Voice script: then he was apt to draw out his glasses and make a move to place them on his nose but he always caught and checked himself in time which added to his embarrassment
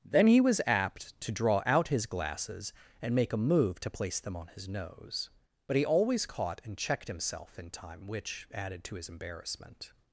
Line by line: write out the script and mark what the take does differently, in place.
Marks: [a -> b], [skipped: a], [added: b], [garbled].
then he was apt to draw out his glasses and make a move to place them on his nose but he always caught and checked himself in time which added to his embarrassment